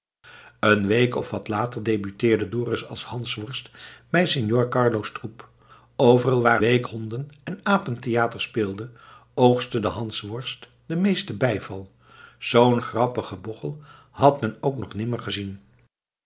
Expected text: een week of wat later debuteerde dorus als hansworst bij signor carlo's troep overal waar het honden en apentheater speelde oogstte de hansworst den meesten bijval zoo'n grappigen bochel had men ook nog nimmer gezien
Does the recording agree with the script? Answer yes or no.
no